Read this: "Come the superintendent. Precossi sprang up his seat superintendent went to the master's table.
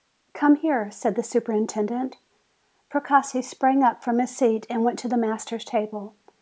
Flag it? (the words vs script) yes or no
yes